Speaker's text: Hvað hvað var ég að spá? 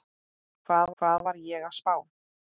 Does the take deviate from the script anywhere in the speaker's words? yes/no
no